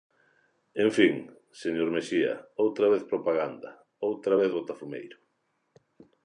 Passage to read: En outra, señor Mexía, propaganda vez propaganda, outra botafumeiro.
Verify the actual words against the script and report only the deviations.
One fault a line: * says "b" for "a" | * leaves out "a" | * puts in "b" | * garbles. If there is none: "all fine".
* says "fin" for "outra"
* says "outra" for "propaganda"
* puts in "vez"